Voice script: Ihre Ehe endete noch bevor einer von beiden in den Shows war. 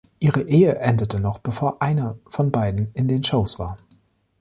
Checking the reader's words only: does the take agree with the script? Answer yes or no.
yes